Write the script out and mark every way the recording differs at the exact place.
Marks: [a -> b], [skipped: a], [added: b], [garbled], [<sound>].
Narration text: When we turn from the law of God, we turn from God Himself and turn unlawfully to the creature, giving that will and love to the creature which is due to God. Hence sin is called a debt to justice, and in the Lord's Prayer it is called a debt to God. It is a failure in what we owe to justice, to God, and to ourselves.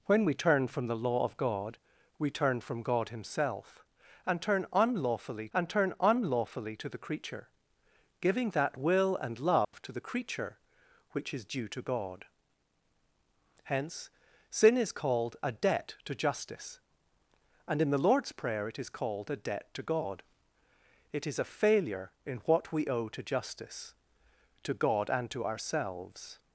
When we turn from the law of God, we turn from God Himself and turn unlawfully [added: and turn unlawfully] to the creature, giving that will and love [dropout] to the creature which is due to God. Hence sin is called a debt to justice, and in the Lord's Prayer it is called a debt to God. It is a failure in what we owe to justice, to God, and to ourselves.